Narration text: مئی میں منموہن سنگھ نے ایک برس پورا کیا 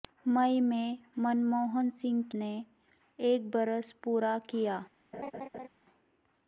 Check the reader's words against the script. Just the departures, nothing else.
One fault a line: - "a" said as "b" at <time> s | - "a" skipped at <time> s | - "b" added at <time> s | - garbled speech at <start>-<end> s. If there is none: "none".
none